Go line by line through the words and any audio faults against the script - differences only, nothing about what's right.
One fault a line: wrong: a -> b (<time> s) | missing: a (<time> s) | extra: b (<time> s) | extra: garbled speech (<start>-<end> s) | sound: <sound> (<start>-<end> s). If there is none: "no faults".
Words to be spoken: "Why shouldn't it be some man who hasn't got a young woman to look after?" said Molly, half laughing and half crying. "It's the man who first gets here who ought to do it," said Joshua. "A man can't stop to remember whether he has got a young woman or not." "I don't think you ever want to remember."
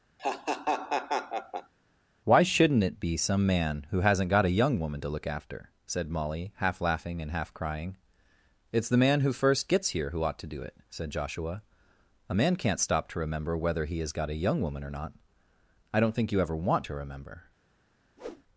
sound: laugh (0.2-1.7 s)
sound: whoosh (18.2-18.4 s)